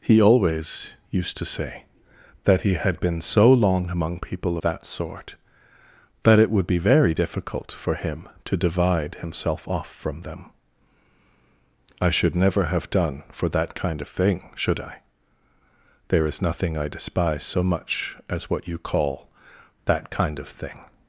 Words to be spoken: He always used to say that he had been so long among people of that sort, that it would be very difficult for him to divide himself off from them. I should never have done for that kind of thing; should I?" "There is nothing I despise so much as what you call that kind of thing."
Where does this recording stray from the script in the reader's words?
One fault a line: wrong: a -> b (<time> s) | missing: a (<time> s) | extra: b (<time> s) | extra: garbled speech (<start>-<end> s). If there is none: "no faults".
missing: of (4.6 s)